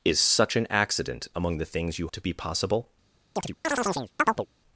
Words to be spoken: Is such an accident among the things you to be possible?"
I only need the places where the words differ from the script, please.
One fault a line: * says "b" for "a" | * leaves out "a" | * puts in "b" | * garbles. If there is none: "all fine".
all fine